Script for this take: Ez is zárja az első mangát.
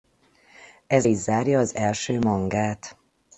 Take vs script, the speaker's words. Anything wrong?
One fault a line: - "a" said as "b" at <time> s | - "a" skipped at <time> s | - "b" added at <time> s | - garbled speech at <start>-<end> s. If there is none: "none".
none